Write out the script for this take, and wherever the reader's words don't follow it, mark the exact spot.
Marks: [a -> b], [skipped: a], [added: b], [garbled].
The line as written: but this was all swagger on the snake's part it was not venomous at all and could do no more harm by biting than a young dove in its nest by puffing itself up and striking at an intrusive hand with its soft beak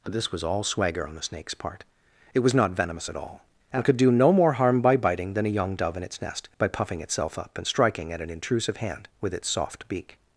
but this was all swagger on the snake's part it was not venomous at all and could do no more harm by biting than a young dove in its nest by puffing itself up and striking at an intrusive hand with its soft beak